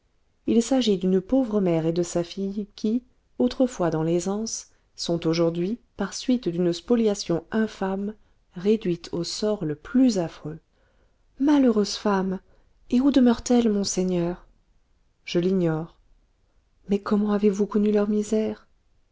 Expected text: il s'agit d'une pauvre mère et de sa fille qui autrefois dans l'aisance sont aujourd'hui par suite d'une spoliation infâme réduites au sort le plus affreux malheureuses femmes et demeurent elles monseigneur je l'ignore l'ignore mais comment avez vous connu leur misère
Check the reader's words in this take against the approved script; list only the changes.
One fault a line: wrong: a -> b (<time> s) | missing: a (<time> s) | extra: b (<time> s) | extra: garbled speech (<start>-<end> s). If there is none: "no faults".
extra: où (13.0 s)
missing: l'ignore (16.0 s)